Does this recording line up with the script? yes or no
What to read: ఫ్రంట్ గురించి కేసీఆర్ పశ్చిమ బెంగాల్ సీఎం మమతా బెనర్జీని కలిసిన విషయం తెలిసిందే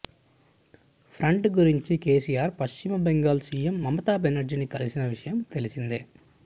yes